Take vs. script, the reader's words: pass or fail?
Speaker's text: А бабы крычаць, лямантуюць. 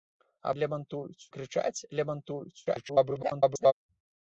fail